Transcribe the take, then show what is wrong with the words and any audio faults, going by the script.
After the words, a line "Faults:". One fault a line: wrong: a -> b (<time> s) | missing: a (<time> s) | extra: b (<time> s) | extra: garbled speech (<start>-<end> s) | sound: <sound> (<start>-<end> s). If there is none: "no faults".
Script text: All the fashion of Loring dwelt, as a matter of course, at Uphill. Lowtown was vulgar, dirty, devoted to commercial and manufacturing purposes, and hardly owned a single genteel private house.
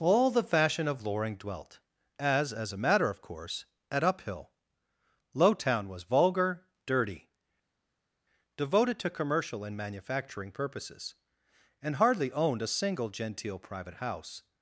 All the fashion of Loring dwelt, as as a matter of course, at Uphill. Lowtown was vulgar, dirty, devoted to commercial and manufacturing purposes, and hardly owned a single genteel private house.
Faults:
extra: as (2.5 s)